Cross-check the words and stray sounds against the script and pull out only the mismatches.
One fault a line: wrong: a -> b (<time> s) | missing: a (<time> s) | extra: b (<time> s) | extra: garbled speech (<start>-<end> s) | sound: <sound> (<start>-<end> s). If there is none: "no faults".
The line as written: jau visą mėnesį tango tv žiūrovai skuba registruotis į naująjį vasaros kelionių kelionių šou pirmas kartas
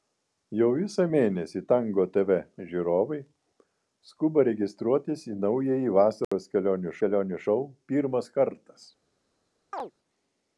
sound: dropout (6.2-6.3 s)
sound: chirp (9.7-9.9 s)